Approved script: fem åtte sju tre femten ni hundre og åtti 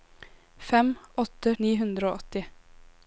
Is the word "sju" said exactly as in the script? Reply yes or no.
no